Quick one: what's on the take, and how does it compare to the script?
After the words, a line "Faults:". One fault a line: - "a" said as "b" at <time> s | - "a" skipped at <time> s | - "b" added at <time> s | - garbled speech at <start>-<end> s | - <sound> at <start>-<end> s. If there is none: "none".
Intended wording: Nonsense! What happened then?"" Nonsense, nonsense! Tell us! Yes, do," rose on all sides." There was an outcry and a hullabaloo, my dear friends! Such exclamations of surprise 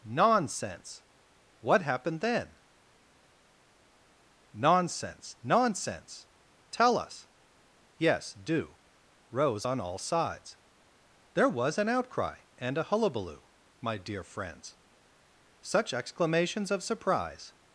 Nonsense! What happened then?"" Nonsense, nonsense! Tell us! Yes, do," rose on all sides." There was an outcry and a hullabaloo, my dear friends! Such exclamations of surprise
Faults:
none